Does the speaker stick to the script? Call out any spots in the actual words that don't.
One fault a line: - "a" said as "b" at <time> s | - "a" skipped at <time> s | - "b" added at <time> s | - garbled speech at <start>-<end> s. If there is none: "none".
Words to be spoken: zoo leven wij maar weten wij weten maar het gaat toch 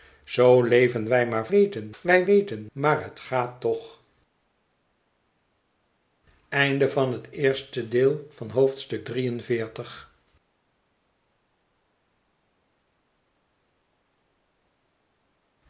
none